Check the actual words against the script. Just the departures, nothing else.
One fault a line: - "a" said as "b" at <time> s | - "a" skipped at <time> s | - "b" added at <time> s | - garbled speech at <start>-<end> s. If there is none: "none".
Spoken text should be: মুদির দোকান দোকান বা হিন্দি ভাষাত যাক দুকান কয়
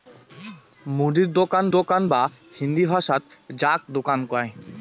none